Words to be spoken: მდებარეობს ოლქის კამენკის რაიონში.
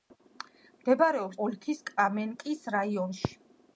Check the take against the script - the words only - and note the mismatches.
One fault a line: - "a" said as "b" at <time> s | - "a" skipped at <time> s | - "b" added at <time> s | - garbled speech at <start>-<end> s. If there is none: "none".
none